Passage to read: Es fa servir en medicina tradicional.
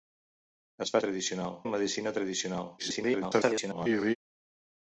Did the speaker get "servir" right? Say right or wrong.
wrong